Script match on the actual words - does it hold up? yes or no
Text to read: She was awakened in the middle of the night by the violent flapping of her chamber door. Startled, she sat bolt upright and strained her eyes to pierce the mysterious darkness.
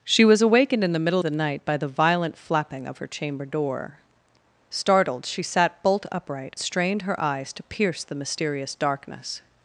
no